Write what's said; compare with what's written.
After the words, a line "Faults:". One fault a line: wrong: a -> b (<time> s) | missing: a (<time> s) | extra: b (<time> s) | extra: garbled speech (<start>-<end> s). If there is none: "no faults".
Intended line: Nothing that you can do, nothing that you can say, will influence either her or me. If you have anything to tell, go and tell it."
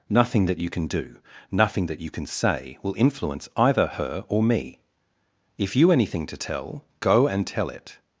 Nothing that you can do, nothing that you can say, will influence either her or me. If you anything to tell, go and tell it."
Faults:
missing: have (5.9 s)